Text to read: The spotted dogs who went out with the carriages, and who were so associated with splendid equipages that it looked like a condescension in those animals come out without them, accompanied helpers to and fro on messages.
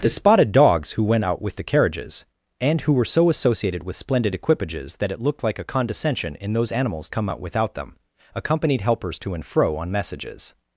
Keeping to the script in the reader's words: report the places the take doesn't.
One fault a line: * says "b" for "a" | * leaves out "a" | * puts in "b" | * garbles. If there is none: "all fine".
all fine